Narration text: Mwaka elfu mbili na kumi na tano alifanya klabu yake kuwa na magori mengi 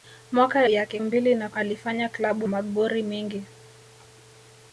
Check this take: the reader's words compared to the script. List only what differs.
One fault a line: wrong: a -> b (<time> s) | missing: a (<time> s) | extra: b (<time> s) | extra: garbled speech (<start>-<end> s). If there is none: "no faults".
wrong: elfu -> yake (0.7 s)
missing: kumi na tano (1.5 s)
missing: yake kuwa na (2.5 s)